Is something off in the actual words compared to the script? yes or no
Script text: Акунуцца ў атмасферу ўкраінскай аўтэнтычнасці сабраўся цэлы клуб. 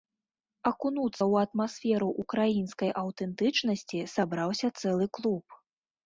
no